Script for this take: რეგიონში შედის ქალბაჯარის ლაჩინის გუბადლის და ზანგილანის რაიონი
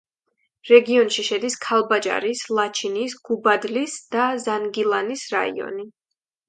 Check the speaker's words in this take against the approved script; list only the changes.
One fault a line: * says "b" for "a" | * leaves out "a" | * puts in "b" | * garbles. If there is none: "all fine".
all fine